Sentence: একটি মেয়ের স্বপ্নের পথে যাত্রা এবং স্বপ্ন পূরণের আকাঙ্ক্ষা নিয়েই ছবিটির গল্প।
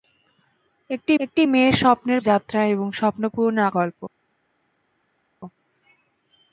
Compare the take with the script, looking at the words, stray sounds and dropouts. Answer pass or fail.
fail